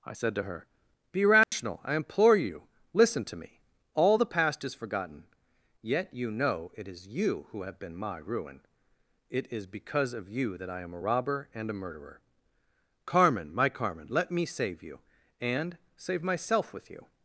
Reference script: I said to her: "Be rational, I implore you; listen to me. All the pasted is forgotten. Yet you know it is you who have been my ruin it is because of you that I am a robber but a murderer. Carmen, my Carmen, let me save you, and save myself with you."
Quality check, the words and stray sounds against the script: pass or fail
fail